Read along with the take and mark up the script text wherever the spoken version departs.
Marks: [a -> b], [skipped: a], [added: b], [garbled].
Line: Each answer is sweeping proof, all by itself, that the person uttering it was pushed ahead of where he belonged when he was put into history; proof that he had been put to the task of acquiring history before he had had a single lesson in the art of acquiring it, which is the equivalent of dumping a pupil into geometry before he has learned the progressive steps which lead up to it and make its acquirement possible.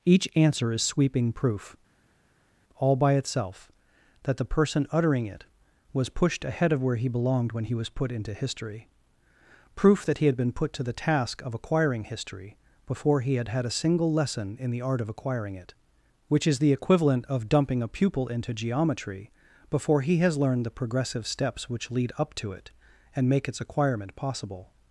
Each answer is sweeping proof, all by itself, that the person uttering it was pushed ahead of where he belonged when he was put into history; proof that he had been put to the task of acquiring history before he had had a single lesson in the art of acquiring it, which is the equivalent of dumping a pupil into geometry before he has learned the progressive steps which lead up to it and make its acquirement possible.